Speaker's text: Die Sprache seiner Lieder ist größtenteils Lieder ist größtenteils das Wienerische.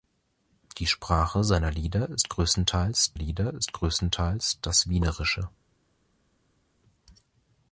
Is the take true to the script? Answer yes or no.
yes